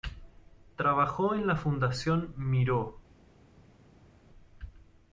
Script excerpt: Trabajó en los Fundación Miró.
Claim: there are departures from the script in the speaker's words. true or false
true